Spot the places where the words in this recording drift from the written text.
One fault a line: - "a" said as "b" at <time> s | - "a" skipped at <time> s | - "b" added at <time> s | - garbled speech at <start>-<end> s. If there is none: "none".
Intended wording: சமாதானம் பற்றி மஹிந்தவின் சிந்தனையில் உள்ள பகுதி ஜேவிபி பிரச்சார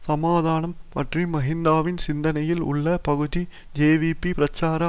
none